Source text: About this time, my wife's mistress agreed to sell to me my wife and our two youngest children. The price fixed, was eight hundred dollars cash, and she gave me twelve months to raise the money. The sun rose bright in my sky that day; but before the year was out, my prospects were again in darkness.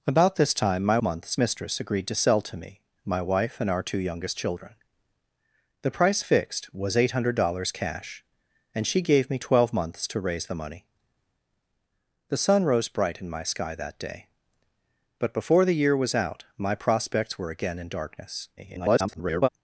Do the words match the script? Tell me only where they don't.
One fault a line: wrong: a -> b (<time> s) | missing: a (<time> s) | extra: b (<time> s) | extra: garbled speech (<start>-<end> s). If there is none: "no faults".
wrong: wife's -> months (1.0 s)
extra: garbled speech (18.6-19.5 s)